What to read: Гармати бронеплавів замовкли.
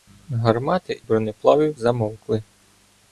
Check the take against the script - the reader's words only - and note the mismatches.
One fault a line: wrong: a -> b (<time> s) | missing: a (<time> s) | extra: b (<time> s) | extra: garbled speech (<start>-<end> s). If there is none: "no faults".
no faults